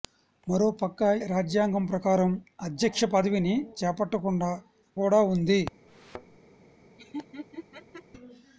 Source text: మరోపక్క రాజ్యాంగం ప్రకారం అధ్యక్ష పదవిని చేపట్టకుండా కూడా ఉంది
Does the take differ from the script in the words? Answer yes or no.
no